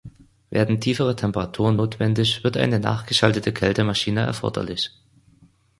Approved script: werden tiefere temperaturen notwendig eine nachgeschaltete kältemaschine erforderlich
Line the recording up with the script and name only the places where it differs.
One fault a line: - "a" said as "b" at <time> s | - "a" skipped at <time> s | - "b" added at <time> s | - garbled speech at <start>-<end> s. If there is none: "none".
- "wird" added at 2.4 s